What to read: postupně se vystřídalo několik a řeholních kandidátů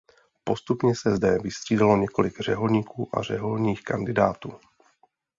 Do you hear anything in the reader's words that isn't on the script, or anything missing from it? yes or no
yes